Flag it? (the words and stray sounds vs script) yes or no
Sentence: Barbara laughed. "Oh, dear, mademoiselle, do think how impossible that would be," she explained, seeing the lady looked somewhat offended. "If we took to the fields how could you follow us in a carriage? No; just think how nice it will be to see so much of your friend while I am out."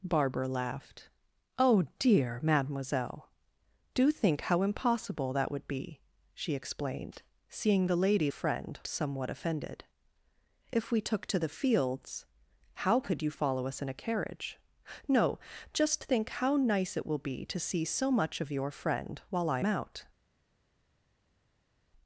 yes